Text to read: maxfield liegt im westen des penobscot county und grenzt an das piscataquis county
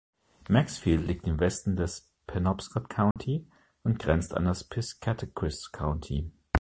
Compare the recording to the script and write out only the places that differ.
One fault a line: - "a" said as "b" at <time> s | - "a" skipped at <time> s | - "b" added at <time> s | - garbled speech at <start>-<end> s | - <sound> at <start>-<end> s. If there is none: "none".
- dropout at 3.1-3.2 s